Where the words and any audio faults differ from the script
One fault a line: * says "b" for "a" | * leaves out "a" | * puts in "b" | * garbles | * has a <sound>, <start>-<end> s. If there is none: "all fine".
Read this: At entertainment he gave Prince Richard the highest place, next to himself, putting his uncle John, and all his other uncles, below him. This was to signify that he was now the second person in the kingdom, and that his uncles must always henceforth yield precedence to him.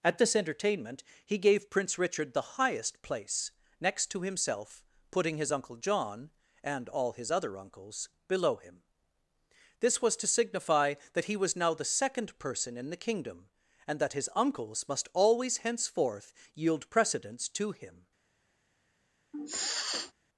* puts in "this"
* has a sniff, 19.3-20.1 s